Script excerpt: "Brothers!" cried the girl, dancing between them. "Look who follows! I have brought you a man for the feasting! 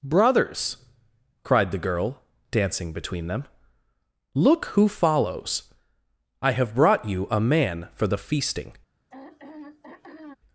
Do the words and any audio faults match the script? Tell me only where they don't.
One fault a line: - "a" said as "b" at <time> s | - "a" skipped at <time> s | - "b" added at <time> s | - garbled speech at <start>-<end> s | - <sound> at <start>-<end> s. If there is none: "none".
- throat clearing at 9.1-10.4 s